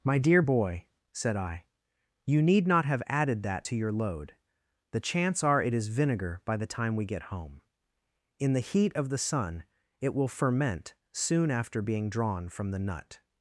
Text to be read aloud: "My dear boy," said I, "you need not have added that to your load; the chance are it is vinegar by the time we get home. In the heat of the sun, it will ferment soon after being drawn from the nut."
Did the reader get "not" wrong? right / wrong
right